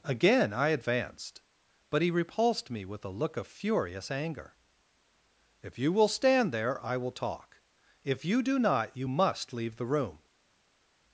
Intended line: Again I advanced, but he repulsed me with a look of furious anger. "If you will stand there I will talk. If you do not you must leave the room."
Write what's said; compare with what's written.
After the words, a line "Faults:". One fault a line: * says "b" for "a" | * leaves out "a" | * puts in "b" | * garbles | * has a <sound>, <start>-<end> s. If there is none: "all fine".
Again I advanced, but he repulsed me with a look of furious anger. "If you will stand there I will talk. If you do not you must leave the room."
Faults:
all fine